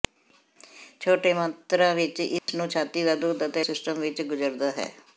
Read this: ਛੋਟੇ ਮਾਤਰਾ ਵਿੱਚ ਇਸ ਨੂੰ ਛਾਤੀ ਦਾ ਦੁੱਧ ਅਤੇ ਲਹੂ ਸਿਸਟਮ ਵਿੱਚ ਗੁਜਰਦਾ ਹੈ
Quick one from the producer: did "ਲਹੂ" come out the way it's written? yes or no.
no